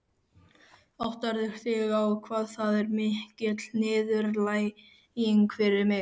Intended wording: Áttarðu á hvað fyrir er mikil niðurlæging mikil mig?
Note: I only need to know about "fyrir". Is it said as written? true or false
false